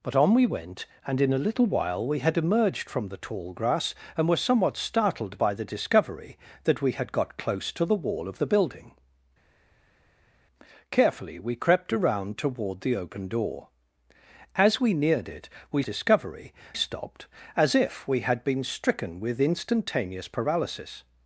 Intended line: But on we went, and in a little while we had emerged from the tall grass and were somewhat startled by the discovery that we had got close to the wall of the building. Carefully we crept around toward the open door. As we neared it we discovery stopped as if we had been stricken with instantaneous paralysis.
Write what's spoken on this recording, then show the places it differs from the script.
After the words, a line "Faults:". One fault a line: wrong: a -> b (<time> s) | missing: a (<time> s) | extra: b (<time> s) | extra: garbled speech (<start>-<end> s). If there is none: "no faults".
But on we went, and in a little while we had emerged from the tall grass and were somewhat startled by the discovery that we had got close to the wall of the building. Carefully we crept around toward the open door. As we neared it we discovery stopped as if we had been stricken with instantaneous paralysis.
Faults:
no faults